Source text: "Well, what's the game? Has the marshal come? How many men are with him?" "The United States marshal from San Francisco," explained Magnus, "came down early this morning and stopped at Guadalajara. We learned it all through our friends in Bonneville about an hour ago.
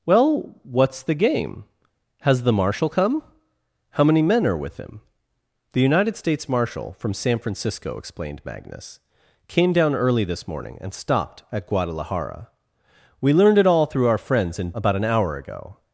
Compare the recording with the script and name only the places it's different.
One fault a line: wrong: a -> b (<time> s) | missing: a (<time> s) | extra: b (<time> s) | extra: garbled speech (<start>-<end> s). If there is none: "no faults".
missing: Bonneville (14.7 s)